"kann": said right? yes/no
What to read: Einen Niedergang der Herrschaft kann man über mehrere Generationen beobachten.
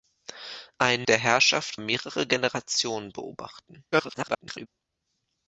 no